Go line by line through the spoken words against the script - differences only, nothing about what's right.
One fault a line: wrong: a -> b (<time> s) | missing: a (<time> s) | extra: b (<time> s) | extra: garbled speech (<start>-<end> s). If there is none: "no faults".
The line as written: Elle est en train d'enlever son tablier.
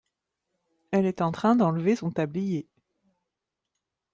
no faults